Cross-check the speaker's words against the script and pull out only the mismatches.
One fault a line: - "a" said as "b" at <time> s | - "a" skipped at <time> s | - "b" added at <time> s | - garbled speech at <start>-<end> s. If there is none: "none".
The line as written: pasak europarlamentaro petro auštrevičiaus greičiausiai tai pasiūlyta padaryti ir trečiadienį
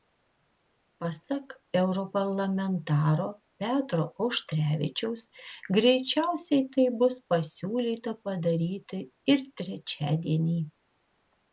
- "bus" added at 7.0 s